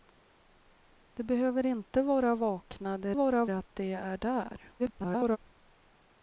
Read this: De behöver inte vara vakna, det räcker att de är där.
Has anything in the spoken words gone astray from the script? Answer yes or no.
yes